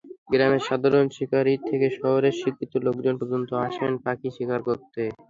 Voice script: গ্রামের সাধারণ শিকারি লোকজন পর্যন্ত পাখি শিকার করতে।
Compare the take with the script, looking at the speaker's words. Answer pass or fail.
fail